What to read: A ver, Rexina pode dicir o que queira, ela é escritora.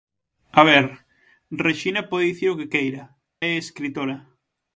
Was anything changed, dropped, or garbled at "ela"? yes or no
yes